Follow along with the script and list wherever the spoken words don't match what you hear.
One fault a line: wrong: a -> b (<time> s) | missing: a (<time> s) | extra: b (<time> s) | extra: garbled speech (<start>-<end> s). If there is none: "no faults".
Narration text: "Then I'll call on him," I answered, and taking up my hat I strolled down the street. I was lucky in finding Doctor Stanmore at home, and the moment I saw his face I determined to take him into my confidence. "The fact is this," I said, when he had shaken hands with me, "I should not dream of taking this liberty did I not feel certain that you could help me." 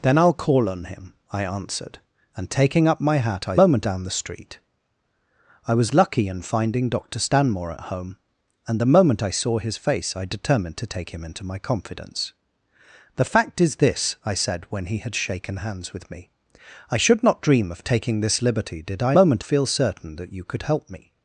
wrong: strolled -> moment (3.6 s)
wrong: not -> moment (19.2 s)